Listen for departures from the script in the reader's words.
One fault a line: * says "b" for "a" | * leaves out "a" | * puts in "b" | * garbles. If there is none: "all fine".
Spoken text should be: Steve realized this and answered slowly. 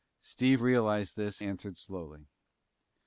* leaves out "and"